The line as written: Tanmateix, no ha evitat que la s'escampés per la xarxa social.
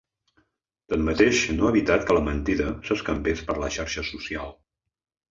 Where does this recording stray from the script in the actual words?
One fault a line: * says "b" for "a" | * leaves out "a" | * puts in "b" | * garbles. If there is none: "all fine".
* puts in "mentida"